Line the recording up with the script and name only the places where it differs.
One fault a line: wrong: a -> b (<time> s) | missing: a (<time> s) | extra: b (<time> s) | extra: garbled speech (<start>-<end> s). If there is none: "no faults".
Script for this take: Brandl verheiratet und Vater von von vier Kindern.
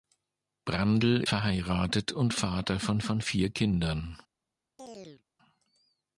no faults